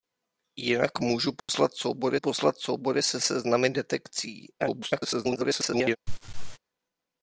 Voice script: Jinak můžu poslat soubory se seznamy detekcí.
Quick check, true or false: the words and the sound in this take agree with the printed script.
false